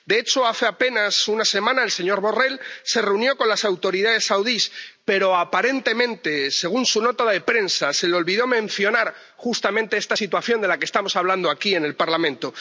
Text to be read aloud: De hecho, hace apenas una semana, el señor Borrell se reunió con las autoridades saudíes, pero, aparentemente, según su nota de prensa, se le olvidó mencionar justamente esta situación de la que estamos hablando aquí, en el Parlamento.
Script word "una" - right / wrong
right